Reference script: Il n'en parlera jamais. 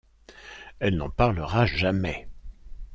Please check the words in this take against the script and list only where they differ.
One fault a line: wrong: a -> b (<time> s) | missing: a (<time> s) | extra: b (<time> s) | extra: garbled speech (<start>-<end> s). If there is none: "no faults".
wrong: Il -> Elle (0.8 s)